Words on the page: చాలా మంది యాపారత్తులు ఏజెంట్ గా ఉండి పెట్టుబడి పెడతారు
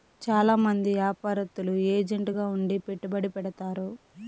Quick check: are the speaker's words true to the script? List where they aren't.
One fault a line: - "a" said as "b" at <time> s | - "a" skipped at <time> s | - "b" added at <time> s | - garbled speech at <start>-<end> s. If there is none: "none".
none